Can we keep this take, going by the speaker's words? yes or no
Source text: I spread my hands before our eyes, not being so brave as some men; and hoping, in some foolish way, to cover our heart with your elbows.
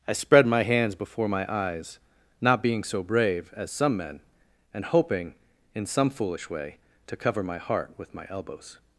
no